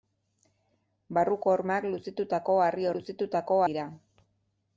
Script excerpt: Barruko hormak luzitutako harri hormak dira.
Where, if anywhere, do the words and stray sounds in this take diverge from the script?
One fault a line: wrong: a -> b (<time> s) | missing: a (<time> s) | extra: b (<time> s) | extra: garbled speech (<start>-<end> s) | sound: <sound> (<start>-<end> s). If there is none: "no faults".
wrong: hormak -> luzitutako (2.9 s)